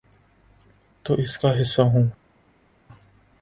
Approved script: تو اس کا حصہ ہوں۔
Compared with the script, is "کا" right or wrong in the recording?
right